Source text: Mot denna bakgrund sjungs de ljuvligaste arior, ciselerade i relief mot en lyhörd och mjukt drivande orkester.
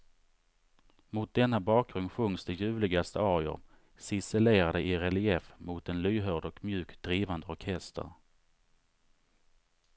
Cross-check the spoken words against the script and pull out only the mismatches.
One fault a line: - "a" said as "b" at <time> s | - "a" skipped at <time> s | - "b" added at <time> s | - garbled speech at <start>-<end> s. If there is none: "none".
none